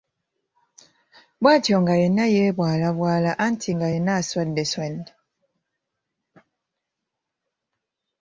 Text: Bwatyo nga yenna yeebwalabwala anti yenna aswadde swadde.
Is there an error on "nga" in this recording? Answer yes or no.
no